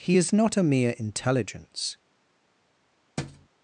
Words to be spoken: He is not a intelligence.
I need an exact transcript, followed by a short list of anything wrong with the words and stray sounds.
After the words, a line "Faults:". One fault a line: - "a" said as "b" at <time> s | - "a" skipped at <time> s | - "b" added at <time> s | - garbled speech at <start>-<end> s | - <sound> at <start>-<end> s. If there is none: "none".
He is not a mere intelligence.
Faults:
- "mere" added at 0.6 s
- thud at 3.2-3.5 s